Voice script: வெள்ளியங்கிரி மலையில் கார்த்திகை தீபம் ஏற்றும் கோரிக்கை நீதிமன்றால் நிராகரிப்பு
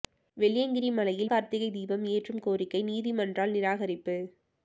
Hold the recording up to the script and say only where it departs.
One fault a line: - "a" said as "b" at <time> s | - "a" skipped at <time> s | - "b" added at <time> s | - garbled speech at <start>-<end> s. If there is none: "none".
none